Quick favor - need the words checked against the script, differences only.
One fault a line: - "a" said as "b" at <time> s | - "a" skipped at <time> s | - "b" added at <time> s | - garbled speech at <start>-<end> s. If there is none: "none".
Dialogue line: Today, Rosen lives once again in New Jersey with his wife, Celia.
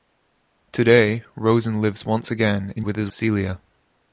- "New Jersey" skipped at 2.8 s
- "wife" skipped at 3.1 s